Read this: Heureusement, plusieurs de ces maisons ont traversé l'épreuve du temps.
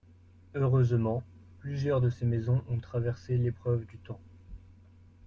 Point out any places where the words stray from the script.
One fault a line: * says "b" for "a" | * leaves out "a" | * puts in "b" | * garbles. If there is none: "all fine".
all fine